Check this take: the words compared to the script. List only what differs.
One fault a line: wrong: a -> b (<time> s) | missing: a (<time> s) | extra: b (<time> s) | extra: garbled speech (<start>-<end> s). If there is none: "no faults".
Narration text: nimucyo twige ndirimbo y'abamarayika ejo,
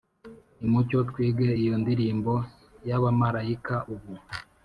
extra: iyo (1.6 s)
wrong: ejo -> ubu (3.9 s)